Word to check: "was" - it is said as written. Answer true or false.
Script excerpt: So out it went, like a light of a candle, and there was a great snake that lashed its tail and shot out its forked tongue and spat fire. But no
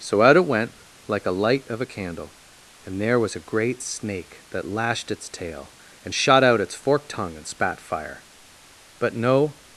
true